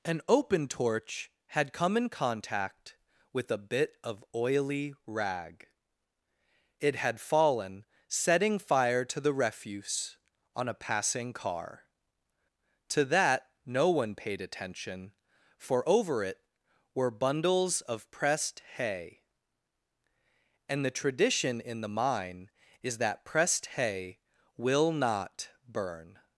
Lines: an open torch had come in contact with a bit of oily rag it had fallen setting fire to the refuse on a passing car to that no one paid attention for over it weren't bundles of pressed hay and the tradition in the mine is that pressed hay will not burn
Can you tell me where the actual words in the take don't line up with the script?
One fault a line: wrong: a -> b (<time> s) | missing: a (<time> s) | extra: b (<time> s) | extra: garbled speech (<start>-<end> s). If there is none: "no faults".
wrong: weren't -> were (16.9 s)